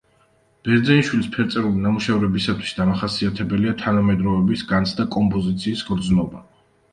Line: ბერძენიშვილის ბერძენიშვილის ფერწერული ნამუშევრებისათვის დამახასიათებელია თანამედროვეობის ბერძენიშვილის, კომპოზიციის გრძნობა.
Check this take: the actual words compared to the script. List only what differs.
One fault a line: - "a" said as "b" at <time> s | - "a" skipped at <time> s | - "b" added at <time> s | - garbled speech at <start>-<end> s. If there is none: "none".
- "ბერძენიშვილის" skipped at 1.3 s
- "ბერძენიშვილის" said as "განცდა" at 4.7 s